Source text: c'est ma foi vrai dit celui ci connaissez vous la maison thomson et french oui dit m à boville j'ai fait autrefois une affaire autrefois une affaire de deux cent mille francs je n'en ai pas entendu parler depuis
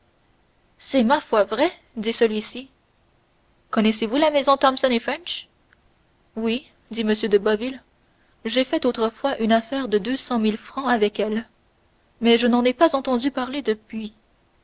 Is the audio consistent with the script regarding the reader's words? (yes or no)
no